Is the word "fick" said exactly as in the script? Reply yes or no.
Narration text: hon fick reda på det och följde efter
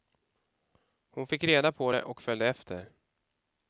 yes